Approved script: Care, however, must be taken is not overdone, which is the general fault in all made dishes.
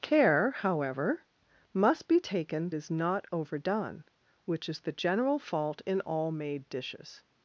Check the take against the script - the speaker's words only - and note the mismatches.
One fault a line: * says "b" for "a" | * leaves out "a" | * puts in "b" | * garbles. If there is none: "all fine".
all fine